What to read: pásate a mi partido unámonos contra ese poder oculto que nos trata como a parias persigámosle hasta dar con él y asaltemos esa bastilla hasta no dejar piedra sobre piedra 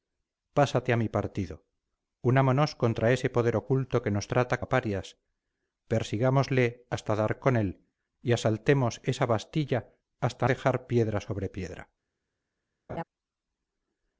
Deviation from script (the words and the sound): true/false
true